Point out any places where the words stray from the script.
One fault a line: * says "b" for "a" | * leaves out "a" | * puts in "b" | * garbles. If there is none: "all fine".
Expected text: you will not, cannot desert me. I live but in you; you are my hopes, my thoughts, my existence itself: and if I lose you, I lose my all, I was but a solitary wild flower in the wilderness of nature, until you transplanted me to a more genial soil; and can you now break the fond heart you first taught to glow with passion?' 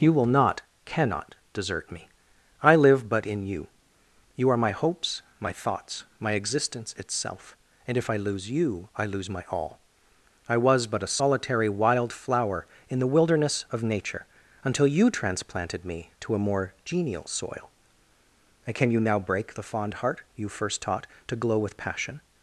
all fine